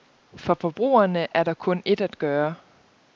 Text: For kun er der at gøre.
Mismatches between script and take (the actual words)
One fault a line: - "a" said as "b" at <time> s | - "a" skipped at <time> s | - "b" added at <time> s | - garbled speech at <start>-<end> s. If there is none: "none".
- "kun" said as "forbrugerne" at 0.6 s
- "kun et" added at 1.5 s